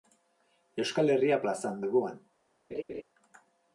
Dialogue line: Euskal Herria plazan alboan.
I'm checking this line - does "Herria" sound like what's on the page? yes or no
yes